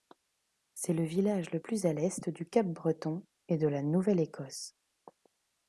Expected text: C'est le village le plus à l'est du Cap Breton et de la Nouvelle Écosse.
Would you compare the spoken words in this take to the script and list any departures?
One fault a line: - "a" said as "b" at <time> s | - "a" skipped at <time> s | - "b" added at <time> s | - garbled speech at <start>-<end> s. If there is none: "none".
none